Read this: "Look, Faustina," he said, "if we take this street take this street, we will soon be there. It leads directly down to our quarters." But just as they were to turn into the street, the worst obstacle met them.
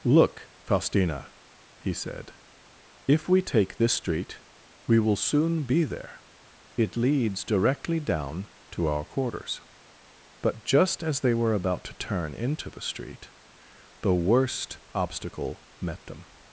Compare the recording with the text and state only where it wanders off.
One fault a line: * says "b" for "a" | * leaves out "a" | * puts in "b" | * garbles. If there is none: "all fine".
* leaves out "take this street"
* puts in "about"